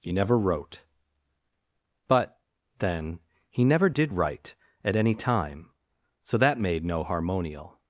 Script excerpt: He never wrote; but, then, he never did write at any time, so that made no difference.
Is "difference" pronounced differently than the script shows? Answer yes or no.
yes